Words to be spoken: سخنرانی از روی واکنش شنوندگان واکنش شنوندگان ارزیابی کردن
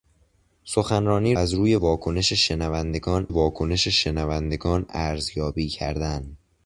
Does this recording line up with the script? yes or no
yes